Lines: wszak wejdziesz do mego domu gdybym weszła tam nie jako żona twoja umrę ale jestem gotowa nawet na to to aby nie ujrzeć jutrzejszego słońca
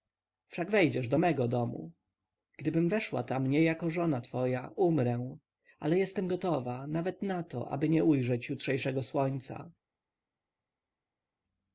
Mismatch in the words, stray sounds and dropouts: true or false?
true